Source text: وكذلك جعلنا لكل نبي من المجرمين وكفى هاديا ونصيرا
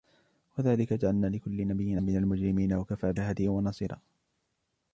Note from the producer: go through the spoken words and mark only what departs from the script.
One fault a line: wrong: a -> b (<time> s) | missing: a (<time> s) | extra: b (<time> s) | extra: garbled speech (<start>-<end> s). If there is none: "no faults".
no faults